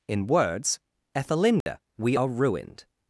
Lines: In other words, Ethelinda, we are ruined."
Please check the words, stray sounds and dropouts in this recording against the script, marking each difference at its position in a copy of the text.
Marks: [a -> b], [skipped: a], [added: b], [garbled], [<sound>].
In [skipped: other] words, Ethelinda, [dropout] we are ruined."